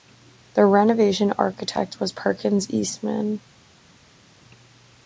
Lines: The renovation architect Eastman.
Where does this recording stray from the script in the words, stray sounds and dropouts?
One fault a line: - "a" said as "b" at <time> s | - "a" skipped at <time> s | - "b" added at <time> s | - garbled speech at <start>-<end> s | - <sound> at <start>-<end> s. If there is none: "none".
- "was Perkins" added at 2.0 s